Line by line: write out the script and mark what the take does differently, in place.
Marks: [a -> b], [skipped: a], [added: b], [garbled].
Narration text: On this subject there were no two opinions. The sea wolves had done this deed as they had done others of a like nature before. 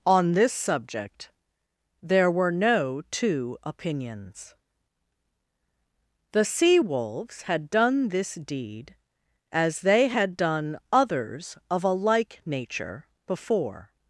On this subject there were no two opinions. The sea wolves had done this deed as they had done others of a like nature before.